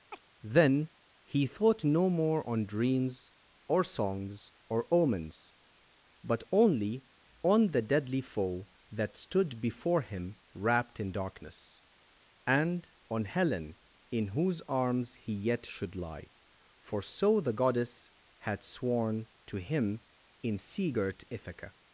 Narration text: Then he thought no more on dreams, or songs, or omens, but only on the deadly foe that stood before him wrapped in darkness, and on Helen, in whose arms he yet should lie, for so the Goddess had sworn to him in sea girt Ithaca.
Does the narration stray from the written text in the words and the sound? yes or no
yes